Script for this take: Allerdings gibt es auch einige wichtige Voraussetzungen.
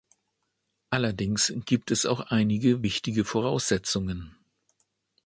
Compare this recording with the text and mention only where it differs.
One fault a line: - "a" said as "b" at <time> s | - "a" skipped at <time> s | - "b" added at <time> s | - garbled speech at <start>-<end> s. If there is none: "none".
none